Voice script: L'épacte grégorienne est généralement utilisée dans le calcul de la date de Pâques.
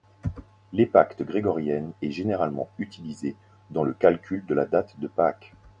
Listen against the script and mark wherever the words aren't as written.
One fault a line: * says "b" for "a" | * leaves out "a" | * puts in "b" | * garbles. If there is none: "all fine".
all fine